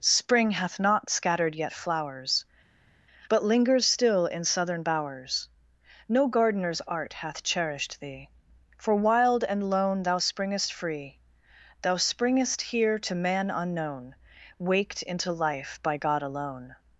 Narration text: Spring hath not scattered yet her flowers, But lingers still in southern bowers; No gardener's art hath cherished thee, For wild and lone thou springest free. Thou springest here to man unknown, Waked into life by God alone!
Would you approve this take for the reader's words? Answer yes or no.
no